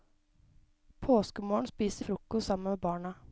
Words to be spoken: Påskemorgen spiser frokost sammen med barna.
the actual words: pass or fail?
pass